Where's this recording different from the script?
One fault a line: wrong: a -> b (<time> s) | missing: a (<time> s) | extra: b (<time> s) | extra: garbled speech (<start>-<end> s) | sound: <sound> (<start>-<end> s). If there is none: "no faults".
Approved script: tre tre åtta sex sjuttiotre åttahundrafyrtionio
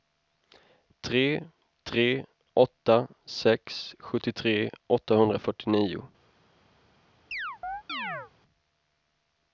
sound: chirp (7.3-8.3 s)